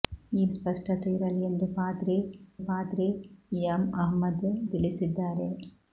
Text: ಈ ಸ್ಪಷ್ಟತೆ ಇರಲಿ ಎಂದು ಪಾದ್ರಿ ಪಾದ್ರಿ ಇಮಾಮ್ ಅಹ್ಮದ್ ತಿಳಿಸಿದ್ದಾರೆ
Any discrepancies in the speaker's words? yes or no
no